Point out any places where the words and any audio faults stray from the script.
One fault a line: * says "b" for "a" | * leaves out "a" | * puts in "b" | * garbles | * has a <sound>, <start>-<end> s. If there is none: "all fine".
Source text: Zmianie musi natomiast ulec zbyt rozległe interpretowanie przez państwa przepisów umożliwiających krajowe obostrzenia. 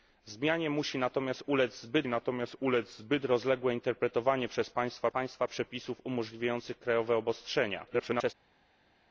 * puts in "natomiast ulec zbyt"
* puts in "państwa"
* garbles